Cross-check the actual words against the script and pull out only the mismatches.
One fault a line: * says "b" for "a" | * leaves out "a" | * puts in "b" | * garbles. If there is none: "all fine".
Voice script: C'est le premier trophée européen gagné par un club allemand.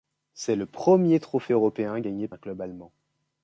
* leaves out "par"